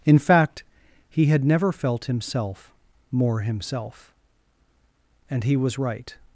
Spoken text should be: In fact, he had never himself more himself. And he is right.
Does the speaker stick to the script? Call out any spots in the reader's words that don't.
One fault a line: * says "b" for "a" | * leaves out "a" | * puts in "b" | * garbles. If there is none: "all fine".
* puts in "felt"
* says "was" for "is"